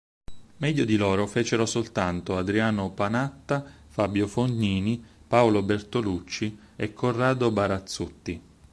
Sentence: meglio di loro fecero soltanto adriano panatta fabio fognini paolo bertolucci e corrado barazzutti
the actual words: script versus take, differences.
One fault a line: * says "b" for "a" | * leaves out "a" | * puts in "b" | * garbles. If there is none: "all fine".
all fine